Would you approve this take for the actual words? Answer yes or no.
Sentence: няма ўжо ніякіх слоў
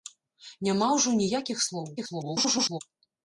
no